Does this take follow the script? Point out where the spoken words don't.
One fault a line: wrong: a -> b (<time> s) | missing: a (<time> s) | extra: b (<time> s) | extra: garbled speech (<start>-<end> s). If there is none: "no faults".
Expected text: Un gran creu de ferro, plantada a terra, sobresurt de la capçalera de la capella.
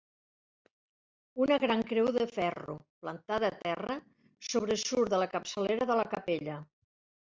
wrong: Un -> Una (1.4 s)